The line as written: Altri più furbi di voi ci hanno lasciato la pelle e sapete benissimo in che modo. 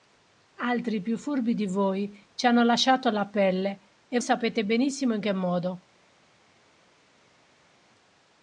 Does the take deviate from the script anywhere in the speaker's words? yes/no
no